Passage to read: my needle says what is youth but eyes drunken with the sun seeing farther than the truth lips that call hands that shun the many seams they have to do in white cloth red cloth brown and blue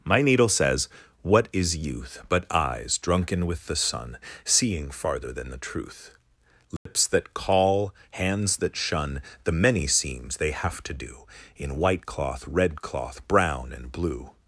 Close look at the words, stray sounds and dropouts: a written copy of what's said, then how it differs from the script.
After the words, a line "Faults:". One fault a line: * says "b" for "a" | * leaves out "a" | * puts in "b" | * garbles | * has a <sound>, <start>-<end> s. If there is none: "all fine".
my needle says what is youth but eyes drunken with the sun seeing farther than the truth lips that call hands that shun the many seams they have to do in white cloth red cloth brown and blue
Faults:
* has a dropout, 6.8-6.9 s